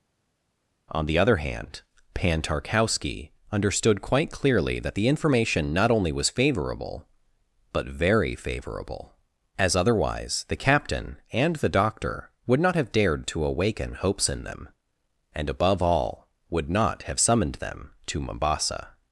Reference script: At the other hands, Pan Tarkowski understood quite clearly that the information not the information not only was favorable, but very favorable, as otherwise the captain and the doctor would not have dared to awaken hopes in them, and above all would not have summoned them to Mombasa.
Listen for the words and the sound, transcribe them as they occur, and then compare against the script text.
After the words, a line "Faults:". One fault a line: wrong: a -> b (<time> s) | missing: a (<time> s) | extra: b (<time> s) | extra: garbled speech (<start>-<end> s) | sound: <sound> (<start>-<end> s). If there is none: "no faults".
On the other hand, Pan Tarkowski understood quite clearly that the information not only was favorable, but very favorable, as otherwise the captain and the doctor would not have dared to awaken hopes in them, and above all would not have summoned them to Mombasa.
Faults:
wrong: At -> On (0.9 s)
wrong: hands -> hand (1.4 s)
missing: the information not (5.9 s)